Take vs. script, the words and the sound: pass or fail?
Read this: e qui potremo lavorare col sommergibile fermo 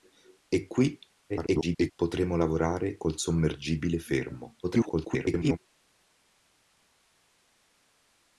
fail